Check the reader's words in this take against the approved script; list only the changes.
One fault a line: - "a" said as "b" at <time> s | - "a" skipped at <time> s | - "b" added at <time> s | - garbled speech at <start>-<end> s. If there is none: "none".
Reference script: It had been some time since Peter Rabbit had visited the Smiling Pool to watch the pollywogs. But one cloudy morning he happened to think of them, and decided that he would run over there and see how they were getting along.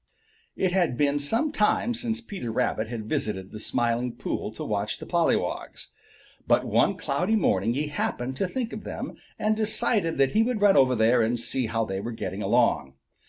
none